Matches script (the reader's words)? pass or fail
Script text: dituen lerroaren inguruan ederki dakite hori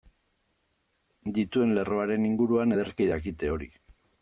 pass